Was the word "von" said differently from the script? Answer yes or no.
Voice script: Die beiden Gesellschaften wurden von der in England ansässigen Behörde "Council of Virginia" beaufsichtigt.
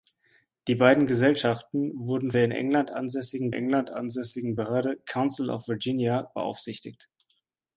yes